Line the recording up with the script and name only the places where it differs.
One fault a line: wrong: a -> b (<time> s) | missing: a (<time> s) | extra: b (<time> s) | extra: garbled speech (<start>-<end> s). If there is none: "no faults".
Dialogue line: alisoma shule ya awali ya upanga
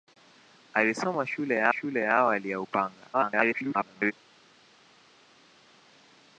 extra: shule ya (1.7 s)
extra: garbled speech (3.1-4.1 s)